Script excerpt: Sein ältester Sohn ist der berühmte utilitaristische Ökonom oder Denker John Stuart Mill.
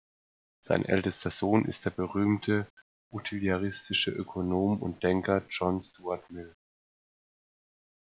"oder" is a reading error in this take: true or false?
true